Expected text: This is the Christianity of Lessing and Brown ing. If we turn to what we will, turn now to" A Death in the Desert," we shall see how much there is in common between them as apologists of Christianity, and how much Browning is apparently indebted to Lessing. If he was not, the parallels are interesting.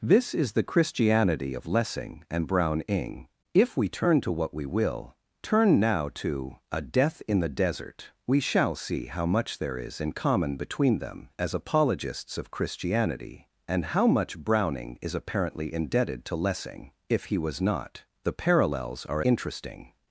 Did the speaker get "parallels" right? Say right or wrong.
right